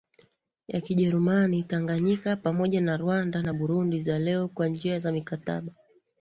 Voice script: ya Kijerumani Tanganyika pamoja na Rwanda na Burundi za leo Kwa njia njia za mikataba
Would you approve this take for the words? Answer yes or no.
no